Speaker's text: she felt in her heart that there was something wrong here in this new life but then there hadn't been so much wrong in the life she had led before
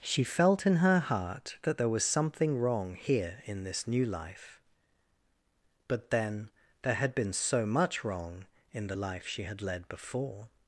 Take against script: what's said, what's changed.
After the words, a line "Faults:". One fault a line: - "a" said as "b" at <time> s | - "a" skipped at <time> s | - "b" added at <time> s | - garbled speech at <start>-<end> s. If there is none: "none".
she felt in her heart that there was something wrong here in this new life but then there had been so much wrong in the life she had led before
Faults:
- "hadn't" said as "had" at 7.0 s